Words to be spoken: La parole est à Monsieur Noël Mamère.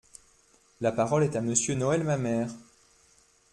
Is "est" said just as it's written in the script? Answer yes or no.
yes